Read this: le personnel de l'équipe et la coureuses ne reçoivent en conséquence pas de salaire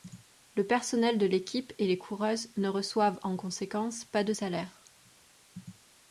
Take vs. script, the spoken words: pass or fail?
fail